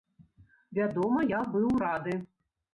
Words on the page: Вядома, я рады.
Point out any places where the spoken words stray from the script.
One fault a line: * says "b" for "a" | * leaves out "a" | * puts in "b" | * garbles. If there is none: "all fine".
* puts in "быў"